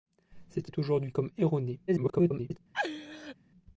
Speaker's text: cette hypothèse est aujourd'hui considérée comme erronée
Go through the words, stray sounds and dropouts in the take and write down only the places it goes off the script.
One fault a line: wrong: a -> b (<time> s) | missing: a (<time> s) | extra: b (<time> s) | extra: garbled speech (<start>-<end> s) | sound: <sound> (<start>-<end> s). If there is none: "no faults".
missing: hypothèse (0.7 s)
missing: considérée (1.1 s)
extra: garbled speech (1.9-2.6 s)
sound: laugh (2.7-3.4 s)